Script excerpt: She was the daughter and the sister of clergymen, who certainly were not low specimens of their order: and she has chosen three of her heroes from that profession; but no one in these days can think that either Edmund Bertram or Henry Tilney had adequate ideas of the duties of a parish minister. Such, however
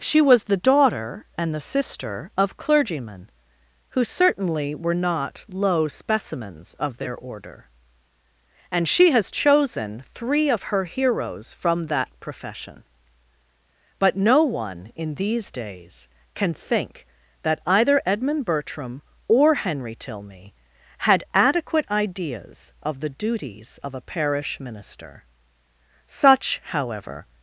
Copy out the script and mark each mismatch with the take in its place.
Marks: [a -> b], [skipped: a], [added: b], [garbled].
She was the daughter and the sister of clergymen, who certainly were not low specimens of their order: and she has chosen three of her heroes from that profession; but no one in these days can think that either Edmund Bertram or Henry Tilney had adequate ideas of the duties of a parish minister. Such, however